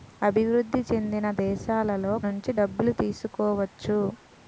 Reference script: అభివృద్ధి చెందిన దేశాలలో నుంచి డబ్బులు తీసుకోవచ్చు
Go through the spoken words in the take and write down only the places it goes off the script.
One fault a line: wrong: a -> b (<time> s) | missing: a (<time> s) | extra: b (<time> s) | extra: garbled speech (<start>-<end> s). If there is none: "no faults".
no faults